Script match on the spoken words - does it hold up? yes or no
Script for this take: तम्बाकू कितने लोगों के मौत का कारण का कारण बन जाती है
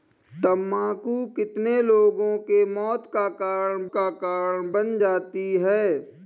yes